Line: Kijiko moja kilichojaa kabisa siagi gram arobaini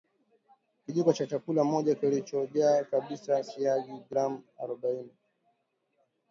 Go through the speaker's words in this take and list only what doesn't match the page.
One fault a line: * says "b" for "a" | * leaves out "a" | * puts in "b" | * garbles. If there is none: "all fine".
* puts in "cha chakula"